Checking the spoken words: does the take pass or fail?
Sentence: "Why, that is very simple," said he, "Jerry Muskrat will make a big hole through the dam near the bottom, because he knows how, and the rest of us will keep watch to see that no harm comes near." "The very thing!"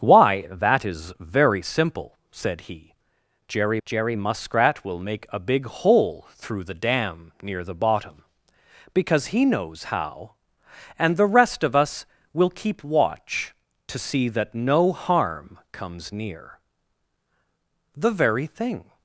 fail